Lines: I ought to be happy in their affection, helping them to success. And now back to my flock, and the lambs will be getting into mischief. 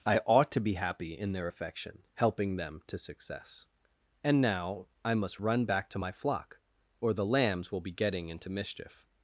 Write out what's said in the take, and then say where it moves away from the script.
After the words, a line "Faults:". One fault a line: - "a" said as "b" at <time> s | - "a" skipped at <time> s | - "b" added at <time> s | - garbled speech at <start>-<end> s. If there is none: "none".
I ought to be happy in their affection, helping them to success. And now I must run back to my flock, or the lambs will be getting into mischief.
Faults:
- "I must run" added at 5.0 s
- "and" said as "or" at 7.0 s